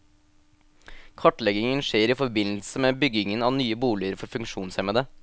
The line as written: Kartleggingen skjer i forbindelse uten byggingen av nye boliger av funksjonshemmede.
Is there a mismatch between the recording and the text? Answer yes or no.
yes